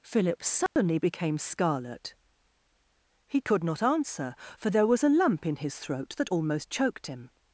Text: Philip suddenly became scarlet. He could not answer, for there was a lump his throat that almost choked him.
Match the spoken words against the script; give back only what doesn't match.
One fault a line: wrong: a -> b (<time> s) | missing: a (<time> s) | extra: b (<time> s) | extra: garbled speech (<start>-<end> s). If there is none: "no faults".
extra: in (5.5 s)